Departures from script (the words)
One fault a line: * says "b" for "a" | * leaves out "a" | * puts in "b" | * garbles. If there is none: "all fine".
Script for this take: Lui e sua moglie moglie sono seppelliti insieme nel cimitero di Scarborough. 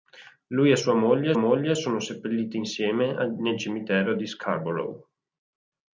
all fine